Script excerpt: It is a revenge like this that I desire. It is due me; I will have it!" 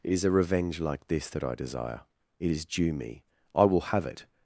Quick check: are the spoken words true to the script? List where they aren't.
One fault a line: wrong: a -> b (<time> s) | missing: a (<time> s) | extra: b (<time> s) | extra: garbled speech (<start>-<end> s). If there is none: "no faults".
no faults